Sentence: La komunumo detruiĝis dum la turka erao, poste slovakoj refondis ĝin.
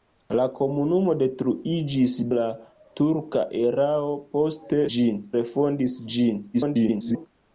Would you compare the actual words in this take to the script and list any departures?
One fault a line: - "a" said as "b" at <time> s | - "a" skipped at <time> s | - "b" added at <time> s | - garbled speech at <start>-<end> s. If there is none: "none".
- "dum" skipped at 2.1 s
- "slovakoj" said as "ĝin" at 5.0 s
- garbled speech at 6.5-7.3 s